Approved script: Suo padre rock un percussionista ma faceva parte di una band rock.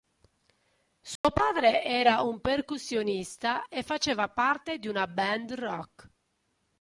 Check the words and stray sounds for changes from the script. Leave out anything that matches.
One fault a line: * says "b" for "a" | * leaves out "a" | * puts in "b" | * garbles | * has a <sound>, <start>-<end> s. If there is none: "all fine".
* has a dropout, 1.2-1.2 s
* says "era" for "rock"
* says "e" for "ma"